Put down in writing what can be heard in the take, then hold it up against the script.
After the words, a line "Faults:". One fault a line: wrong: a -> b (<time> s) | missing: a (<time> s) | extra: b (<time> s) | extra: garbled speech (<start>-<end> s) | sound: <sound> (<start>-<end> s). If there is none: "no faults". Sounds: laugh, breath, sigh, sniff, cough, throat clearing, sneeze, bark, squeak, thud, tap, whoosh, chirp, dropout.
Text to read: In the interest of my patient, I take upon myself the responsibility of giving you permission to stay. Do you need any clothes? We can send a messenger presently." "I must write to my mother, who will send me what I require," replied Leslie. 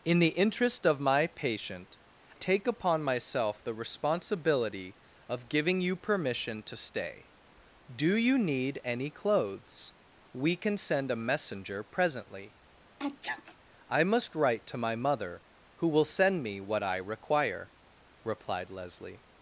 In the interest of my patient, take upon myself the responsibility of giving you permission to stay. Do you need any clothes? We can send a messenger presently." "I must write to my mother, who will send me what I require," replied Leslie.
Faults:
missing: I (2.0 s)
sound: sneeze (13.0-13.6 s)